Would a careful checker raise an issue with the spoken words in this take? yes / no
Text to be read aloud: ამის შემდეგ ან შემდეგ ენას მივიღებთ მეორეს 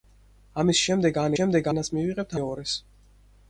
no